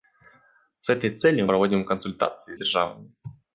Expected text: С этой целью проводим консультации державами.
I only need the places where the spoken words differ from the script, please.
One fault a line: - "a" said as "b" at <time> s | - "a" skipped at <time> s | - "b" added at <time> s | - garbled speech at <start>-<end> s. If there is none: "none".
none